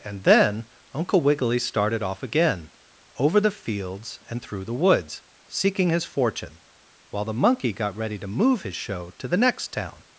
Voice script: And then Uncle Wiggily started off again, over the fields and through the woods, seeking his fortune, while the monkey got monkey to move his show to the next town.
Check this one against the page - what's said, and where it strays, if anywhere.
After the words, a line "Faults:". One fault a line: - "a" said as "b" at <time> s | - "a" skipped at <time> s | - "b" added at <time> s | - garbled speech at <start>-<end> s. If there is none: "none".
And then Uncle Wiggily started off again, over the fields and through the woods, seeking his fortune, while the monkey got ready to move his show to the next town.
Faults:
- "monkey" said as "ready" at 8.0 s